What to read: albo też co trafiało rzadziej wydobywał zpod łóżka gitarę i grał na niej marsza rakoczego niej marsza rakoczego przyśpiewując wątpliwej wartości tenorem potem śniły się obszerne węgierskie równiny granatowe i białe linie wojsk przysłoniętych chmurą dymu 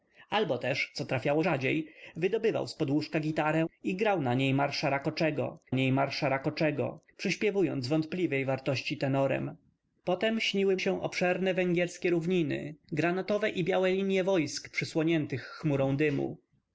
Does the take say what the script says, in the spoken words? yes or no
yes